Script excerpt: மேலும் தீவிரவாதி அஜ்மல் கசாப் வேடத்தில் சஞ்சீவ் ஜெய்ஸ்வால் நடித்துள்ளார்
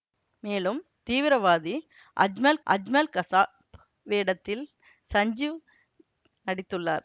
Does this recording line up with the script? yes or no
no